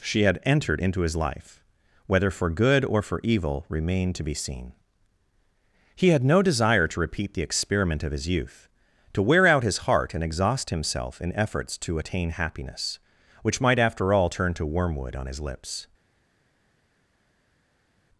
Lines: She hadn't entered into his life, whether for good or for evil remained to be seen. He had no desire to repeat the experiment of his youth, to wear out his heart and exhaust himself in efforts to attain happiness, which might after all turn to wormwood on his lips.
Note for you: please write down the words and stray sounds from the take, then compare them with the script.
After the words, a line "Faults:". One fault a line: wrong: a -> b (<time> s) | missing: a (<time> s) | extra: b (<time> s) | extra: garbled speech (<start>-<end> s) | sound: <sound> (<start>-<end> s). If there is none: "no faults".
She had entered into his life, whether for good or for evil remained to be seen. He had no desire to repeat the experiment of his youth, to wear out his heart and exhaust himself in efforts to attain happiness, which might after all turn to wormwood on his lips.
Faults:
wrong: hadn't -> had (0.2 s)